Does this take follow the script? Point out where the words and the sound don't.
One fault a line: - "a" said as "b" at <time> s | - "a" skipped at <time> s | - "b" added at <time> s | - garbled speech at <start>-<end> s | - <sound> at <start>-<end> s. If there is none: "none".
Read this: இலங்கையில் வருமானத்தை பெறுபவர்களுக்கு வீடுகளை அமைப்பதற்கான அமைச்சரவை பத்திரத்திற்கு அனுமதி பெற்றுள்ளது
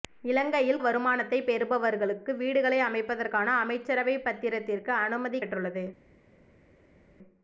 none